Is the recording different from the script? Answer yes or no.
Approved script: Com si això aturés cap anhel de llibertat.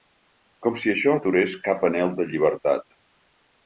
no